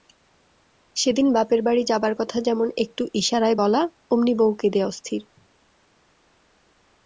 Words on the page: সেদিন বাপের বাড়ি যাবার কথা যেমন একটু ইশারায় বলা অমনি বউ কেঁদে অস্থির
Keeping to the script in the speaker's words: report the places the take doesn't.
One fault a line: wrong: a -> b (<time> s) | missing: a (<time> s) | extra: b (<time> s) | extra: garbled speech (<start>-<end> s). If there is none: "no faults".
no faults